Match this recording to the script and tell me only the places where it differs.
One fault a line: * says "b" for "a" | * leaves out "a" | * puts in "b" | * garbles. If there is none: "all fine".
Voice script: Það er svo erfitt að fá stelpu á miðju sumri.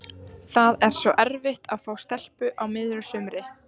all fine